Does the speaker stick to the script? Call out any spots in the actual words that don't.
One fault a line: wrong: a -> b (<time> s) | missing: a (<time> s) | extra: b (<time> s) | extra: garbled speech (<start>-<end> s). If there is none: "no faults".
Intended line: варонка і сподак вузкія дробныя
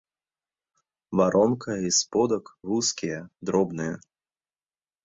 no faults